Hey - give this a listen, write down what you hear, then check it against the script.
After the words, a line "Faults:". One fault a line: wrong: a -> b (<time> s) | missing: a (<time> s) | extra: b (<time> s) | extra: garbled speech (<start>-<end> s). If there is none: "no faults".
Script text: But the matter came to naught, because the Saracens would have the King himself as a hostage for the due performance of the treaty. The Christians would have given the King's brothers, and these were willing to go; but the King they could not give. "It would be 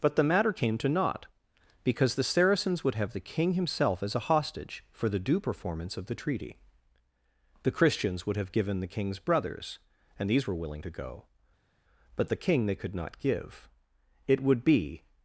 But the matter came to naught, because the Saracens would have the King himself as a hostage for the due performance of the treaty. The Christians would have given the King's brothers, and these were willing to go; but the King they could not give. "It would be
Faults:
no faults